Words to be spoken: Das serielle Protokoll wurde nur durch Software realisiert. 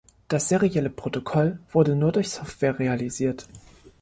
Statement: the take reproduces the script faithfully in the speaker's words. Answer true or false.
true